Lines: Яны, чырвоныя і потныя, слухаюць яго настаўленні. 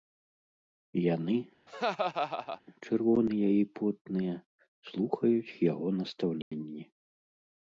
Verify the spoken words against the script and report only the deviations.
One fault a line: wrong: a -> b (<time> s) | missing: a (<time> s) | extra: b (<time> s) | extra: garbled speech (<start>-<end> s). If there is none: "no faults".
no faults